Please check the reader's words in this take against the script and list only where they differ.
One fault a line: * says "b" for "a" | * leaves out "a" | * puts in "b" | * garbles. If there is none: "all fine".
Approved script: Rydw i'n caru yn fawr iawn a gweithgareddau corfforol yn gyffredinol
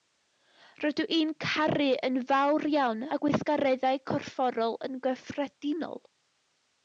all fine